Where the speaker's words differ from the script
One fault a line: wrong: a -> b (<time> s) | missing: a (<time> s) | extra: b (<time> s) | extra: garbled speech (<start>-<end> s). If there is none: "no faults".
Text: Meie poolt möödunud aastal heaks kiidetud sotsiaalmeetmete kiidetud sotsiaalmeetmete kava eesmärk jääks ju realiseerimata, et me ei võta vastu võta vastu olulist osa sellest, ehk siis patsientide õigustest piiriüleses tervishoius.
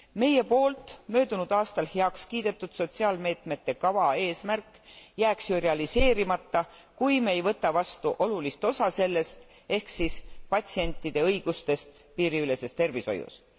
missing: kiidetud sotsiaalmeetmete (3.8 s)
wrong: et -> kui (7.0 s)
missing: võta vastu (8.1 s)